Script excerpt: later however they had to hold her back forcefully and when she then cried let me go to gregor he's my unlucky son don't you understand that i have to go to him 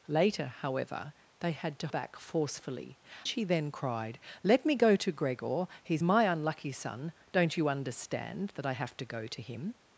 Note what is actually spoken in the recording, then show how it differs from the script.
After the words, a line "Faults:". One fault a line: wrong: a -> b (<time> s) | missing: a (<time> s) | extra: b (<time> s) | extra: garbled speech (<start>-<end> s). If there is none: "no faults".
later however they had to back forcefully she then cried let me go to gregor he's my unlucky son don't you understand that i have to go to him
Faults:
missing: hold her (1.9 s)
missing: and when (3.0 s)